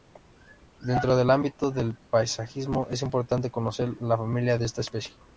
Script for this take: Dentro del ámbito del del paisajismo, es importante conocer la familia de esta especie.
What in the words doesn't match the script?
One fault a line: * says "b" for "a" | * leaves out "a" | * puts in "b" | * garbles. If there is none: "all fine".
* leaves out "del"